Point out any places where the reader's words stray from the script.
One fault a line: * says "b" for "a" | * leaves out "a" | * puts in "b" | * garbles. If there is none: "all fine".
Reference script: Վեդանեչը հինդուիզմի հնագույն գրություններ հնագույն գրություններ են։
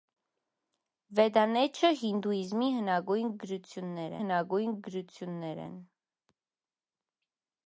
all fine